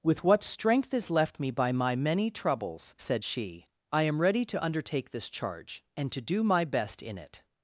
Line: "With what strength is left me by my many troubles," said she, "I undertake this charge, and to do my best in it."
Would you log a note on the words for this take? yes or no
yes